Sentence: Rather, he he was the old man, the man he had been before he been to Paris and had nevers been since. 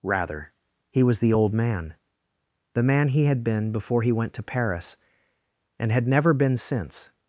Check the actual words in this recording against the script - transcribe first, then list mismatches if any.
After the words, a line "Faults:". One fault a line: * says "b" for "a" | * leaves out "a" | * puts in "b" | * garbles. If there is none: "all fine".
Rather, he was the old man, the man he had been before he went to Paris and had never been since.
Faults:
* leaves out "he"
* says "went" for "been"
* says "never" for "nevers"